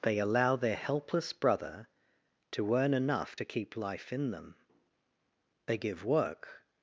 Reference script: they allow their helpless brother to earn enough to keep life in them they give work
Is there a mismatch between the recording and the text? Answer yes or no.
no